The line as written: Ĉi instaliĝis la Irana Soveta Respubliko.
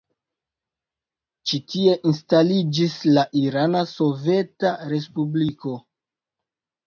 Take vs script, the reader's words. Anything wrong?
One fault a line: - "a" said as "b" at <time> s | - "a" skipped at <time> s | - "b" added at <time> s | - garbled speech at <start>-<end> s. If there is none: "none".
- "tie" added at 1.7 s